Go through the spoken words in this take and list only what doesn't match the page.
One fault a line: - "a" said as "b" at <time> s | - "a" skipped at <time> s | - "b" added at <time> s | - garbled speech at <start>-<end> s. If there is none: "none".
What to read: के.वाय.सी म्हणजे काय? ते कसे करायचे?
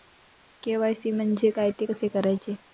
none